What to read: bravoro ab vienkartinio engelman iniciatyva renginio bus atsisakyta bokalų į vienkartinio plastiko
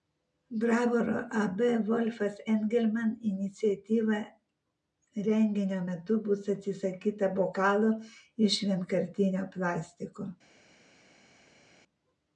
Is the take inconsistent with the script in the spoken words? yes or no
yes